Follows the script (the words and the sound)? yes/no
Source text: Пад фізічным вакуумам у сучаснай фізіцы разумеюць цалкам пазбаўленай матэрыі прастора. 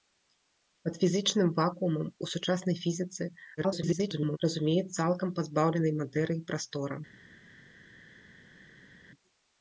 no